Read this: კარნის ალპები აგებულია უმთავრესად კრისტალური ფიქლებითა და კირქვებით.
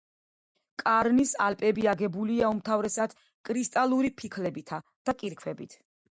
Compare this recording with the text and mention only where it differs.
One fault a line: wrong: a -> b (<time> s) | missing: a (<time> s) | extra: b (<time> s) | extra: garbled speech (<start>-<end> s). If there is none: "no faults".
no faults